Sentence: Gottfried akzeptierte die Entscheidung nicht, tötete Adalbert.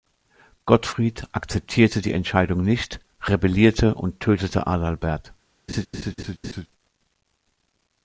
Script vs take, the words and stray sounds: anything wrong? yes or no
yes